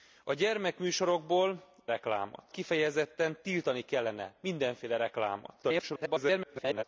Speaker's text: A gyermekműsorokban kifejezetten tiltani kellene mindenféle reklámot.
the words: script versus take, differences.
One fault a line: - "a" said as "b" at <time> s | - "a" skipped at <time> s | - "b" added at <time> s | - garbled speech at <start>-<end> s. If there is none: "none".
- "gyermekműsorokban" said as "reklámot" at 1.9 s
- garbled speech at 5.6-6.8 s